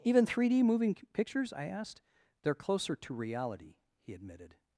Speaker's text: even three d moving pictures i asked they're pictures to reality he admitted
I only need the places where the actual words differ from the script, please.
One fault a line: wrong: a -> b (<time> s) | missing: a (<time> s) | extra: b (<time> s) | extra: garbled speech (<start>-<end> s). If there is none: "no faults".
wrong: pictures -> closer (2.6 s)